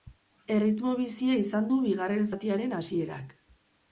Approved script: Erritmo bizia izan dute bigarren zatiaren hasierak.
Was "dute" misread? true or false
true